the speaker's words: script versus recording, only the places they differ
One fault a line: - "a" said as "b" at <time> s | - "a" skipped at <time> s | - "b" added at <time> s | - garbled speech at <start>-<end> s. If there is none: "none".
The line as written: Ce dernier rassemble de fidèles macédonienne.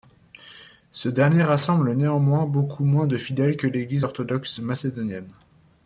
- "néanmoins beaucoup moins" added at 1.9 s
- "que l'Église orthodoxe" added at 3.5 s